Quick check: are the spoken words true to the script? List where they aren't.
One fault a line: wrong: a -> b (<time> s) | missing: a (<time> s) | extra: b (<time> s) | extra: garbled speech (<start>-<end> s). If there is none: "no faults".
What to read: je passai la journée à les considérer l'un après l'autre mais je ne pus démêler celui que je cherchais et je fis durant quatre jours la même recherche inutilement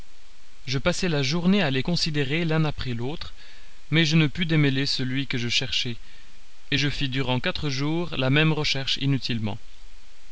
no faults